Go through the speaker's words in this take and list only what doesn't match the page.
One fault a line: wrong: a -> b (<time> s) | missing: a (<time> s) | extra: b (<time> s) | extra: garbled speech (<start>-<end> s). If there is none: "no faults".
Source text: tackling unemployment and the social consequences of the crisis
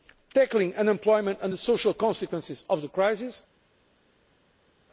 no faults